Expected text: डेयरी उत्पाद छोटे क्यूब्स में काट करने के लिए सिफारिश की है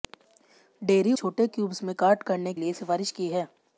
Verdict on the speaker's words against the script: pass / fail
fail